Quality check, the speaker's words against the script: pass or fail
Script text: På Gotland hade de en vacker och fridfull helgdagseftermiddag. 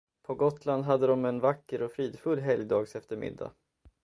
pass